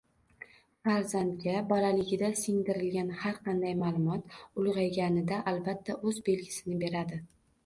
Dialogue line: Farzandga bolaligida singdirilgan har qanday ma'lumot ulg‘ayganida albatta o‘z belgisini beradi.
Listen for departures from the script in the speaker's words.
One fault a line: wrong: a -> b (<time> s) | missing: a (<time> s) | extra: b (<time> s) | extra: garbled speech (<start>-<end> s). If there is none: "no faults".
no faults